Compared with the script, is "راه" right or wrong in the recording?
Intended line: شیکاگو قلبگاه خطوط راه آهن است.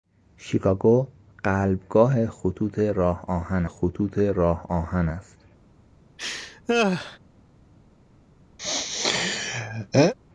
right